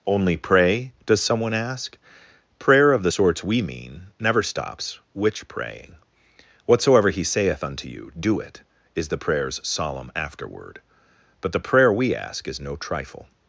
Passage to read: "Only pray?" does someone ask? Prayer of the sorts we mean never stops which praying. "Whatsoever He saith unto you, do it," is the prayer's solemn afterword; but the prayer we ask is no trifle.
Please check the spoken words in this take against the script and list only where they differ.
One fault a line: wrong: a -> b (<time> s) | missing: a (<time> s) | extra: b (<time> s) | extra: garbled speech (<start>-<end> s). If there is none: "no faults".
no faults